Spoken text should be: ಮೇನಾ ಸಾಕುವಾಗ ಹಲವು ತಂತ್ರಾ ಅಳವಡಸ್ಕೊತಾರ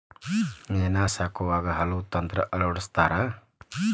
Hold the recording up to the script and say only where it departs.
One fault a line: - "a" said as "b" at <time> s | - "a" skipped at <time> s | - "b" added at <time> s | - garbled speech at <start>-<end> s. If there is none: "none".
none